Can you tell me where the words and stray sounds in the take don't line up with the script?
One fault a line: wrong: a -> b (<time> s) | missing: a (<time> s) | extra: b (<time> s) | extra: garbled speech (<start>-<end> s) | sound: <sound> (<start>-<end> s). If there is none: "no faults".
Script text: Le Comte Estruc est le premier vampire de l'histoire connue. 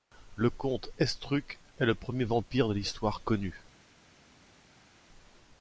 no faults